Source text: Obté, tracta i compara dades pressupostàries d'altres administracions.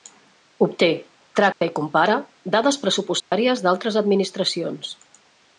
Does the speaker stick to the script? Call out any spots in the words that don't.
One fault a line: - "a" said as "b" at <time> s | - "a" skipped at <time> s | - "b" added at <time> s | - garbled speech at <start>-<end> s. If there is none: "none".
none